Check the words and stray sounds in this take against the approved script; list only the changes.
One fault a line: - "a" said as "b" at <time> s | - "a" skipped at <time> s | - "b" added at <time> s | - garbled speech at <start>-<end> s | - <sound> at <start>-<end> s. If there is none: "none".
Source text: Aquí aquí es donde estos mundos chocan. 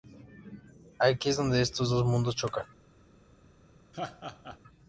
- "aquí" skipped at 1.3 s
- "dos" added at 1.9 s
- laugh at 3.9-4.6 s